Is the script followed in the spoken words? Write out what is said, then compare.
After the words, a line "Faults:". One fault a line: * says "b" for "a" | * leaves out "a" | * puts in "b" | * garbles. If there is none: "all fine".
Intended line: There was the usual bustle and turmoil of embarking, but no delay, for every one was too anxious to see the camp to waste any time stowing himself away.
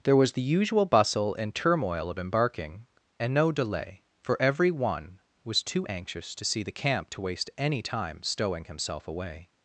There was the usual bustle and turmoil of embarking, and no delay, for every one was too anxious to see the camp to waste any time stowing himself away.
Faults:
* says "and" for "but"